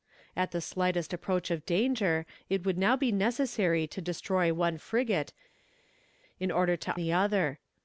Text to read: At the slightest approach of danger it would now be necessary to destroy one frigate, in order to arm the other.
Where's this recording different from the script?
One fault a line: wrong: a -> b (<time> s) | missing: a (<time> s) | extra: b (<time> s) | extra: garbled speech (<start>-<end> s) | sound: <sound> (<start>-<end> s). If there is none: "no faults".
missing: arm (6.9 s)